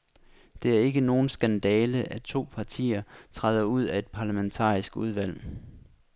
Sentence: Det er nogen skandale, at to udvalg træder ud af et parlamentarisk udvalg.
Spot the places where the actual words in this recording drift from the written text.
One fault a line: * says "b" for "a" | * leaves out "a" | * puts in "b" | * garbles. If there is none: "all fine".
* puts in "ikke"
* says "partier" for "udvalg"